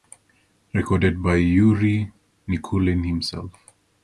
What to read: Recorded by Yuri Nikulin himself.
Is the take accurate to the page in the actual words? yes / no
yes